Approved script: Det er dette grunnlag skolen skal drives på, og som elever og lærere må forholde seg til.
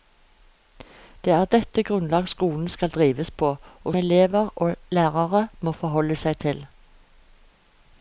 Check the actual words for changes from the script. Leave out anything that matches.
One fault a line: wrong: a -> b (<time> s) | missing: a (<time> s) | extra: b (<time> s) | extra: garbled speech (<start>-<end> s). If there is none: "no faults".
missing: som (4.0 s)